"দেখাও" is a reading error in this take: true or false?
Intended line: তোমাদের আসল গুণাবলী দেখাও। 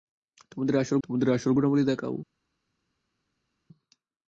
false